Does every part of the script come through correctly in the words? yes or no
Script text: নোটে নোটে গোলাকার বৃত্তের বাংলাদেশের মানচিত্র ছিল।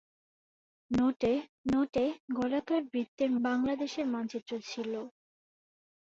yes